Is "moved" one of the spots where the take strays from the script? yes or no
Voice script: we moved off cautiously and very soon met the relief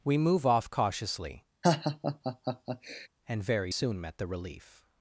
yes